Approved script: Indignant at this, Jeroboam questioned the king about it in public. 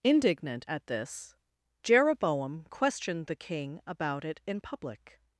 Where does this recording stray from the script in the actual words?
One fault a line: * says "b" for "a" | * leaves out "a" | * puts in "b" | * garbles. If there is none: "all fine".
all fine